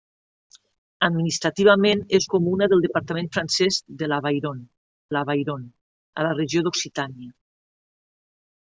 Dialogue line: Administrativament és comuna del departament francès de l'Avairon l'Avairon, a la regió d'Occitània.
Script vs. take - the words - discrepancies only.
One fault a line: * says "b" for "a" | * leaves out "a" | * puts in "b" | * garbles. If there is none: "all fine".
all fine